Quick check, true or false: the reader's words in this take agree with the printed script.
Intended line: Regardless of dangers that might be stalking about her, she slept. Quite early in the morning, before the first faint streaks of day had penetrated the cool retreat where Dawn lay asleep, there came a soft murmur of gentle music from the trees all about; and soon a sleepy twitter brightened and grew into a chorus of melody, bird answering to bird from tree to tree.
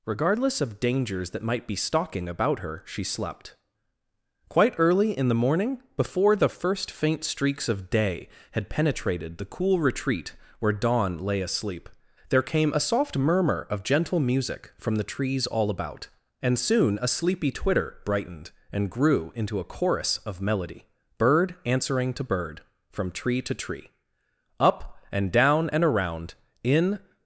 false